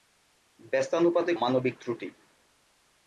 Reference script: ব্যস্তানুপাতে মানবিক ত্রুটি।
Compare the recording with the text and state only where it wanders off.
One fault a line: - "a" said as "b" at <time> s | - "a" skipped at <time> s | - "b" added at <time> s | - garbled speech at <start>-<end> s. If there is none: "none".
none